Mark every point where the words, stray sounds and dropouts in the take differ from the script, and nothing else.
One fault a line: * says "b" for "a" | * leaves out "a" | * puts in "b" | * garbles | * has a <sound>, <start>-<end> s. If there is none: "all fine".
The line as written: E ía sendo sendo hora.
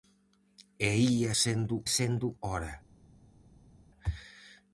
all fine